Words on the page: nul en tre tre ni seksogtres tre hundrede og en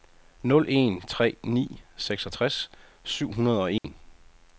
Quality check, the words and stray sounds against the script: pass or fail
fail